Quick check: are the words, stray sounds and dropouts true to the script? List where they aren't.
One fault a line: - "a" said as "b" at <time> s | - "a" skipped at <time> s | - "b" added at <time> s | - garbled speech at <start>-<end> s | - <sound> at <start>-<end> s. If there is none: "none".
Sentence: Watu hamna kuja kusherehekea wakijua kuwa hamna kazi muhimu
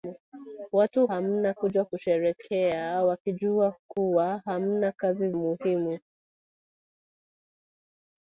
none